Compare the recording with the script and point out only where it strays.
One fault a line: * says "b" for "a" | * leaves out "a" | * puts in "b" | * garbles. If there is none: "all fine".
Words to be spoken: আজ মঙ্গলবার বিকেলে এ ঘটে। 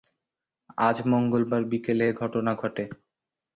* puts in "ঘটনা"